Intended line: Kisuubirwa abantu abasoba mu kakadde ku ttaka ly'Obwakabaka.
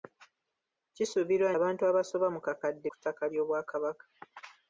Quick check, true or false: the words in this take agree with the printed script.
true